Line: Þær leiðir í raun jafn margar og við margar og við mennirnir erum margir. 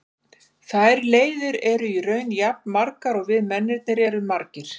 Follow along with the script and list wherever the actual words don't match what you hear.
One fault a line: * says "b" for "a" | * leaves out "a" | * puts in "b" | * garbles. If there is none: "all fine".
* puts in "eru"
* leaves out "margar og við"